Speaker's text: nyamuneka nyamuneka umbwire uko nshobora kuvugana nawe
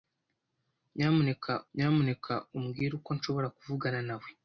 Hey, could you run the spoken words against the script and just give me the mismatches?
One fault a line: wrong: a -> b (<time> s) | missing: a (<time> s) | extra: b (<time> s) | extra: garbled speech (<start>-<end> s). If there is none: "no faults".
no faults